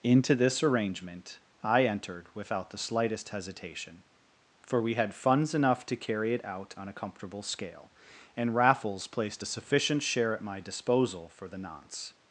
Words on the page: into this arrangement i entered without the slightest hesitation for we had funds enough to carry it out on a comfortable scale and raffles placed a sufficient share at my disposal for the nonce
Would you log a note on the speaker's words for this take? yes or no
no